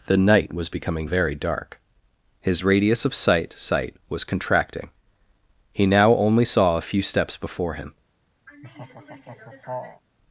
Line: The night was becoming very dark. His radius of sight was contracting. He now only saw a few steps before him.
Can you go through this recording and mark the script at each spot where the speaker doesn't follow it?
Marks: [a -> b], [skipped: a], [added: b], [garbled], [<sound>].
The night was becoming very dark. His radius of sight [added: sight] was contracting. He now only saw a few steps before him. [laugh]